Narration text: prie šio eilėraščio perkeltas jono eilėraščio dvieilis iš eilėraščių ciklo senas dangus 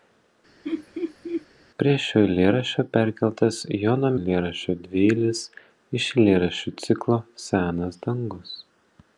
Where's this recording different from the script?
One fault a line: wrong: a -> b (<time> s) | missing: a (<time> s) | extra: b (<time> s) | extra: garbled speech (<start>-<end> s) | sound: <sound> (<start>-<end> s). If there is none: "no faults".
sound: laugh (0.6-1.5 s)